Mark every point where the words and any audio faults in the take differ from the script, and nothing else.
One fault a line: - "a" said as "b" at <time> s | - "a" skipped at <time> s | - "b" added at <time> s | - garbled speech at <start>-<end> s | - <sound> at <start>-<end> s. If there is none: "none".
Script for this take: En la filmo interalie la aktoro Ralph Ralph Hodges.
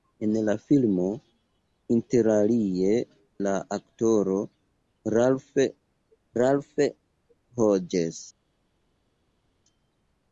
none